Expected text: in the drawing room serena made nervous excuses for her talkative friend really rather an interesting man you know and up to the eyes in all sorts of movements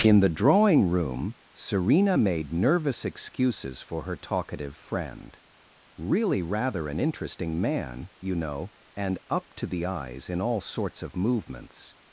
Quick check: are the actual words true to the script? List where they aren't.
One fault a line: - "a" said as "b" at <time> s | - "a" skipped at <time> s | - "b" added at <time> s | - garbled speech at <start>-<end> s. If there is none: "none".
none